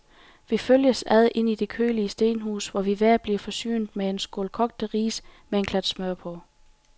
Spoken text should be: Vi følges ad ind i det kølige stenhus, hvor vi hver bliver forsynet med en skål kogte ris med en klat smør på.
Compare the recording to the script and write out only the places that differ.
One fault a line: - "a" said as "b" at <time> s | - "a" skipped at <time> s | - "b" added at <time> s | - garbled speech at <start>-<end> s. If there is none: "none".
none